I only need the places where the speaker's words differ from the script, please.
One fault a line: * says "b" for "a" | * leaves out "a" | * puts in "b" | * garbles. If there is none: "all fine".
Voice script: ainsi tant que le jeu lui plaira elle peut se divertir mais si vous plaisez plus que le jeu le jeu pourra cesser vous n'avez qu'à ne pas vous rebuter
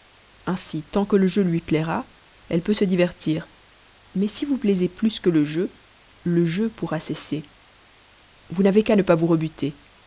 all fine